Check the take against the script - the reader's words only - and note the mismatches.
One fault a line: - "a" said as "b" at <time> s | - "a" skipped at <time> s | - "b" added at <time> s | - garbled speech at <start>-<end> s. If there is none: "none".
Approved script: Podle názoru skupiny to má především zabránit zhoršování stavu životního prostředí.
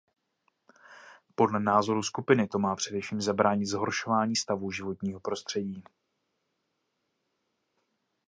none